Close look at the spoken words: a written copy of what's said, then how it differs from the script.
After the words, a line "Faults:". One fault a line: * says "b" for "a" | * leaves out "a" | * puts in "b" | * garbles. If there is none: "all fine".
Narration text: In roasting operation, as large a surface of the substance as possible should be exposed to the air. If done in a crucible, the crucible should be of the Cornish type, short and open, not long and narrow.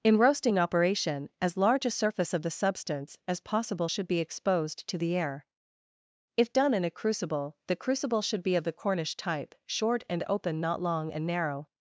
In roasting operation, as large a surface of the substance as possible should be exposed to the air. If done in a crucible, the crucible should be of the Cornish type, short and open, not long and narrow.
Faults:
all fine